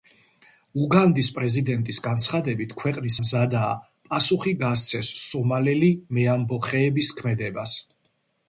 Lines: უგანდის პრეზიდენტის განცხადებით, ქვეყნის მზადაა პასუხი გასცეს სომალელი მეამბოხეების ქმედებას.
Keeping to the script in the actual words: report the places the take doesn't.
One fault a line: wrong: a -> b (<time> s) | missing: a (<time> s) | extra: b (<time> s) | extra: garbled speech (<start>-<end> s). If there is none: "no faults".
no faults